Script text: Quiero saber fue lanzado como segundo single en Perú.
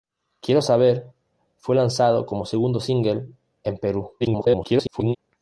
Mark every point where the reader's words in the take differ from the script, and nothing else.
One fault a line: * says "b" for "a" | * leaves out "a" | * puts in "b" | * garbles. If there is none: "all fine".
* garbles